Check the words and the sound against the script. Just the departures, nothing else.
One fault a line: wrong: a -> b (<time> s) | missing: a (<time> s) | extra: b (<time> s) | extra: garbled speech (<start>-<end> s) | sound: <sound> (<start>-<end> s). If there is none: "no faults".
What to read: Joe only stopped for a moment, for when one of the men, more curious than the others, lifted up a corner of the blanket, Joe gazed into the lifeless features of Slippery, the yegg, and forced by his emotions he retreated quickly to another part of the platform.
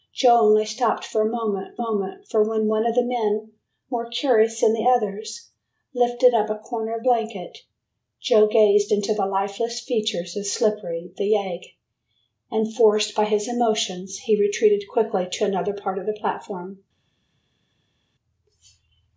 extra: moment (1.8 s)
missing: the (7.0 s)